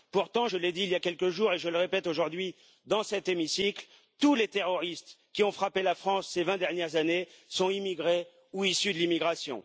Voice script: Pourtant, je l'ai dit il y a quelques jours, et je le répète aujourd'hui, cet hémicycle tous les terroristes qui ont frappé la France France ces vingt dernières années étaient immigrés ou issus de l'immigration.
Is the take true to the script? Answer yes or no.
no